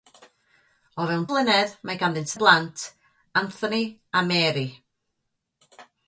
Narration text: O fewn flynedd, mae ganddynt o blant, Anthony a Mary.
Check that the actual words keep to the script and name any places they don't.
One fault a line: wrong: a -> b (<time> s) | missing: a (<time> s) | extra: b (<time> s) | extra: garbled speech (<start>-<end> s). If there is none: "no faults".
no faults